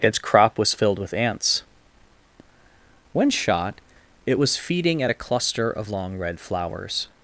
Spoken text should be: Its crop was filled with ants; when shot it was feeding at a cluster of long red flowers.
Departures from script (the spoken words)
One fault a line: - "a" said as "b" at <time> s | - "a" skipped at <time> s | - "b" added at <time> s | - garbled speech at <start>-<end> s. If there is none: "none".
none